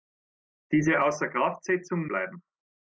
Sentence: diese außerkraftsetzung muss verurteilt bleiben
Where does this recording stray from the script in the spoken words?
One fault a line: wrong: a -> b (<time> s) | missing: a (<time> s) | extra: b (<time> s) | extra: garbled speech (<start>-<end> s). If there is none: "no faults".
missing: muss verurteilt (2.1 s)